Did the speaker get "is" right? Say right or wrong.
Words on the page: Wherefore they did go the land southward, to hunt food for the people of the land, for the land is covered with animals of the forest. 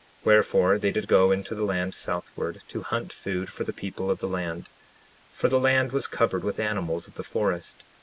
wrong